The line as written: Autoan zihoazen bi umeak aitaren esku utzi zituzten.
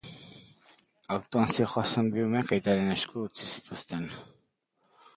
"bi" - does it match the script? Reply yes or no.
yes